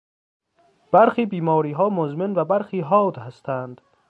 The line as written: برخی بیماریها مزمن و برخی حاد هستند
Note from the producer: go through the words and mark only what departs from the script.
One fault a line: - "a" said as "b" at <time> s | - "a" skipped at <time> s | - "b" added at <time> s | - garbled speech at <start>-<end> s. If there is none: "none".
none